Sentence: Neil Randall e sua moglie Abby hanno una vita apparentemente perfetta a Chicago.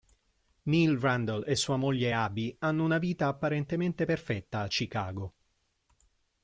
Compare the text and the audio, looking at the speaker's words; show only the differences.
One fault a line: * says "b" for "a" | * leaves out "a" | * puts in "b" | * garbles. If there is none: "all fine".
all fine